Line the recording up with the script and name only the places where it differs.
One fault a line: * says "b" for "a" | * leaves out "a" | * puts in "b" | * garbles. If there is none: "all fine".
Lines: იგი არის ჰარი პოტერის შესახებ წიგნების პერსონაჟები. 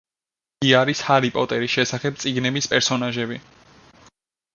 all fine